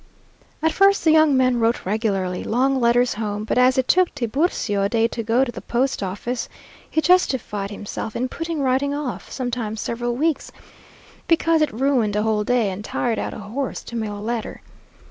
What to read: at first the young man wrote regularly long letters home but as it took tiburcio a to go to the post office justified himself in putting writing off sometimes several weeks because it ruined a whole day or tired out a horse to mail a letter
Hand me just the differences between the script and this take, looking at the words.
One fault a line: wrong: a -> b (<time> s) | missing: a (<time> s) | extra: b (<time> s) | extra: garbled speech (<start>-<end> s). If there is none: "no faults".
extra: day (4.9 s)
extra: he (6.9 s)
wrong: or -> and (12.7 s)